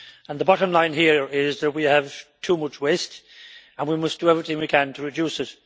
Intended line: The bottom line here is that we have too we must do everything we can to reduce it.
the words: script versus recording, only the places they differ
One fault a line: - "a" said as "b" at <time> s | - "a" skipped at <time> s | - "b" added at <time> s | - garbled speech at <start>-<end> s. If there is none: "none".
- "much waste and" added at 2.6 s